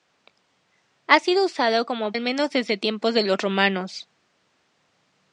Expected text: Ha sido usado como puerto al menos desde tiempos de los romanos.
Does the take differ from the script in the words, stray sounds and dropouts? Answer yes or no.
yes